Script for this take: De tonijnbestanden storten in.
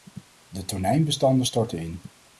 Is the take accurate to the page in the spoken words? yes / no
yes